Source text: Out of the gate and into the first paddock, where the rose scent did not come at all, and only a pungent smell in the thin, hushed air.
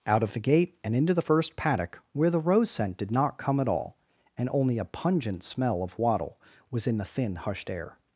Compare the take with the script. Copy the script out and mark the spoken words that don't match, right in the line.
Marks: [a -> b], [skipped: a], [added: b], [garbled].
Out of the gate and into the first paddock, where the rose scent did not come at all, and only a pungent smell [added: of wattle was] in the thin, hushed air.